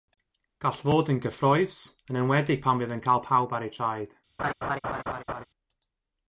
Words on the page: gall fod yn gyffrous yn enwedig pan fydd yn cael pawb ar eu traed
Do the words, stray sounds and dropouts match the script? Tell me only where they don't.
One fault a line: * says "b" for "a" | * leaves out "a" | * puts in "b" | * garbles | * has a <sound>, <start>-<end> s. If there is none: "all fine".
* has a laugh, 4.4-5.5 s